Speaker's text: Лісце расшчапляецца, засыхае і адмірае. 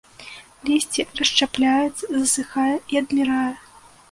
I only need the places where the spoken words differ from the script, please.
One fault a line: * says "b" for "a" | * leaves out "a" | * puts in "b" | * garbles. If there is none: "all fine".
all fine